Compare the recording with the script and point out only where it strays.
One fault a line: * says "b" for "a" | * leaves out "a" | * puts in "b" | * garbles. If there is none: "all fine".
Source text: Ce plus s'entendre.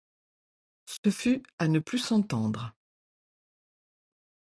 * puts in "fut à ne"